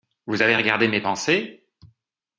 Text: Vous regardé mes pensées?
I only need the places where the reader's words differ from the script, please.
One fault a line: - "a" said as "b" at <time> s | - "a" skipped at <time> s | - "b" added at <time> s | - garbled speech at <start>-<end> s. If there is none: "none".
- "avez" added at 0.4 s